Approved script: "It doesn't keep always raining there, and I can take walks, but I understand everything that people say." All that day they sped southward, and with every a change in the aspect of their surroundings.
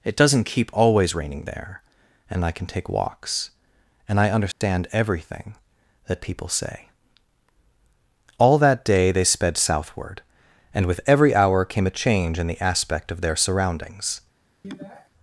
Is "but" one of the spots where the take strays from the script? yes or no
yes